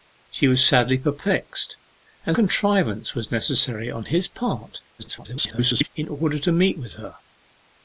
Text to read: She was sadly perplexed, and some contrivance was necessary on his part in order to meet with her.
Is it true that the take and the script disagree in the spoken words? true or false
true